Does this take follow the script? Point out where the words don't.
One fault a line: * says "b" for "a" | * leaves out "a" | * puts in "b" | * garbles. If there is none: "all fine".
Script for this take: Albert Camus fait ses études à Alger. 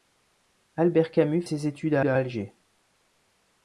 * leaves out "fait"
* puts in "à"